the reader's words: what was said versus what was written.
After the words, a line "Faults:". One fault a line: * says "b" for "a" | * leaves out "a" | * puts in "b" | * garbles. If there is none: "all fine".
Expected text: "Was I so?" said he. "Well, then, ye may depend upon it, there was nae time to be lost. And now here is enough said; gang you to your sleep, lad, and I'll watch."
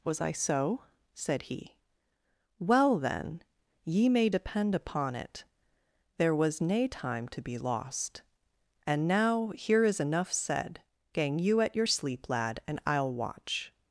"Was I so?" said he. "Well, then, ye may depend upon it, there was nae time to be lost. And now here is enough said; gang you at your sleep, lad, and I'll watch."
Faults:
* says "at" for "to"